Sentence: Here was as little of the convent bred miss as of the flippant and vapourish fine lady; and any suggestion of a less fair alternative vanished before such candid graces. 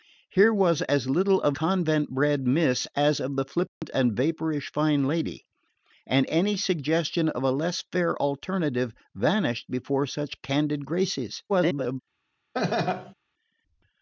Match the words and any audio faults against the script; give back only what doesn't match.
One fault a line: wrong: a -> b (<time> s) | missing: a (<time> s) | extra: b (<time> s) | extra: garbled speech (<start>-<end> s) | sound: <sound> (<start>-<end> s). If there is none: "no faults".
missing: the (1.5 s)
sound: dropout (3.7-3.8 s)
extra: garbled speech (11.5-12.0 s)
sound: laugh (12.5-13.1 s)